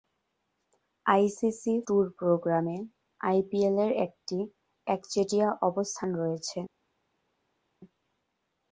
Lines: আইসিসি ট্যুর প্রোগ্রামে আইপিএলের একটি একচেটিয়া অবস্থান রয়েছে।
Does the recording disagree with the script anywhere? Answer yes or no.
no